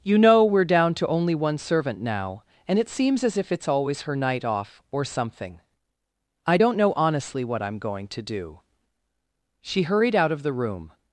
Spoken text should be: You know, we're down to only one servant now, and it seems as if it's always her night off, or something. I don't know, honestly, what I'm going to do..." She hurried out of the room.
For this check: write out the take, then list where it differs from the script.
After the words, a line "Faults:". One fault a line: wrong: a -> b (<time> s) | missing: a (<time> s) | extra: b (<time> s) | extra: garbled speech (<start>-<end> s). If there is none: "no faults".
You know, we're down to only one servant now, and it seems as if it's always her night off, or something. I don't know, honestly, what I'm going to do..." She hurried out of the room.
Faults:
no faults